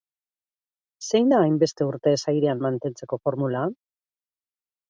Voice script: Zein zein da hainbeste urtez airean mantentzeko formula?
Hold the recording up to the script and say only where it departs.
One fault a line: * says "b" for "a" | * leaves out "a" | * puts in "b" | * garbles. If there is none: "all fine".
* leaves out "zein"